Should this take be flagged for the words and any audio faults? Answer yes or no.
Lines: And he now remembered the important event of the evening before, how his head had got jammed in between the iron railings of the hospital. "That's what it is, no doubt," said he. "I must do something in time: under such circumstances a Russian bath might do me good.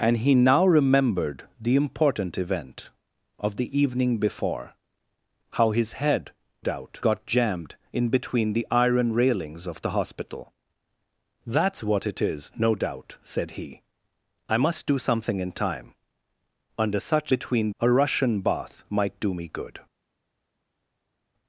yes